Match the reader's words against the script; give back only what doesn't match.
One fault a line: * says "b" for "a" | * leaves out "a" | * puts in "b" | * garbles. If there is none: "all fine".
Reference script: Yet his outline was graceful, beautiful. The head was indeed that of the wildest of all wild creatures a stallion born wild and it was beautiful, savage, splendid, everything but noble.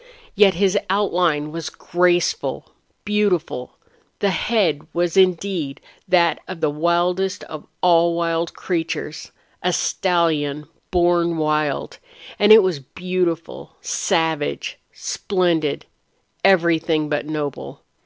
all fine